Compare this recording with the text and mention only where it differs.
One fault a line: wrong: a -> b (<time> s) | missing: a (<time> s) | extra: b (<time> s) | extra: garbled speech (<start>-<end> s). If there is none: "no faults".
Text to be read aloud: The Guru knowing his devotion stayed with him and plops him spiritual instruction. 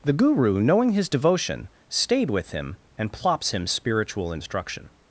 no faults